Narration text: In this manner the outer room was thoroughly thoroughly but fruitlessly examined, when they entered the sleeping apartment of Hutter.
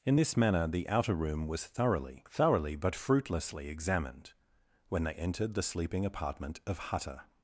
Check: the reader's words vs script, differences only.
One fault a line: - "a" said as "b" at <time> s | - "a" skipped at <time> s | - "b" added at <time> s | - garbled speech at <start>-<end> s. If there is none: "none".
none